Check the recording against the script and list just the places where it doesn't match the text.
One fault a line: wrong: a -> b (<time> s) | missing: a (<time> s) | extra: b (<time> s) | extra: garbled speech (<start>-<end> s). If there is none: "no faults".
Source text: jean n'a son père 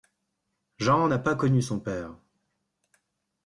extra: pas connu (1.2 s)